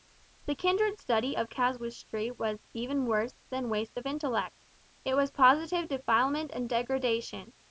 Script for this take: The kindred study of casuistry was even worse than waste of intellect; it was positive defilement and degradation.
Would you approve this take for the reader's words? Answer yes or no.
yes